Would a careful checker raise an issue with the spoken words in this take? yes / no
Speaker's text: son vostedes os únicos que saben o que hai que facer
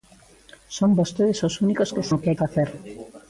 yes